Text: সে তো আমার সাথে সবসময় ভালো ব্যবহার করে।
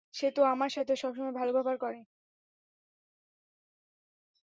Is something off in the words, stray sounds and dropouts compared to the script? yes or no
no